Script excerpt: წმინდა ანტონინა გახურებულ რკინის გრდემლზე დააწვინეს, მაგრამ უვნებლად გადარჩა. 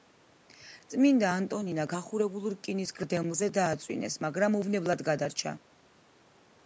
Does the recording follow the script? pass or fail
pass